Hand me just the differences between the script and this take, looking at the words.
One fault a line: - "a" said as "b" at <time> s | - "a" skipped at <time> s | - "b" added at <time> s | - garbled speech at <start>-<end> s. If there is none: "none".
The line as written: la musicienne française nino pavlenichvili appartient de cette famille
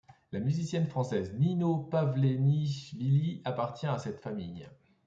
- "de" said as "à" at 3.9 s